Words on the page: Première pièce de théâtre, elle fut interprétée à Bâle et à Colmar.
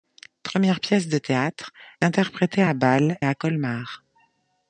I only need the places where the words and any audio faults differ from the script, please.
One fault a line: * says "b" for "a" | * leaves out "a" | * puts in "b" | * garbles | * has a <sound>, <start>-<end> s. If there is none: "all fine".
* leaves out "elle fut"
* leaves out "et"